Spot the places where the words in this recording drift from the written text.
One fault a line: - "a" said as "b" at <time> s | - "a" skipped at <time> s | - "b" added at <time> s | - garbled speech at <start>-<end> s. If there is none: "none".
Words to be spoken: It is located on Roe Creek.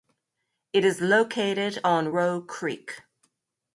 none